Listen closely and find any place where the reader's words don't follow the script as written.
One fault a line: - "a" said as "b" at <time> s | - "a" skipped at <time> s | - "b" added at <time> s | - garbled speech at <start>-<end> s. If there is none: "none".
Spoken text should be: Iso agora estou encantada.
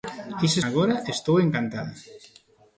none